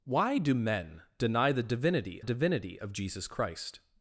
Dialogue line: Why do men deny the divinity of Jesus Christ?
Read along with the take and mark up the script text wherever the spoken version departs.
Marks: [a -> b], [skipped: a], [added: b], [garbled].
Why do men deny the divinity [added: divinity] of Jesus Christ?